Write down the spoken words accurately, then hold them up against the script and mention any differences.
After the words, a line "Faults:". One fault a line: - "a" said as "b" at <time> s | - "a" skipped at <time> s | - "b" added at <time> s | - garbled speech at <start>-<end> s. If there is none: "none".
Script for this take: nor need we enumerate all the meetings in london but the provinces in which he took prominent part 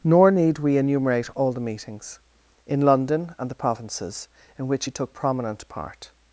nor need we enumerate all the meetings in london and the provinces in which he took prominent part
Faults:
- "but" said as "and" at 3.4 s